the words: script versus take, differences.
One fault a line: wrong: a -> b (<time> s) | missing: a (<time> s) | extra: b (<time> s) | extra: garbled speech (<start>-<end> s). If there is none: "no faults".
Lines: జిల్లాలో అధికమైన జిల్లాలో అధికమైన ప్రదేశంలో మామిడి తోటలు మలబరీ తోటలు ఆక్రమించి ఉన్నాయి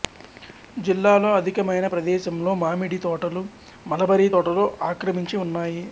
missing: జిల్లాలో అధికమైన (1.9 s)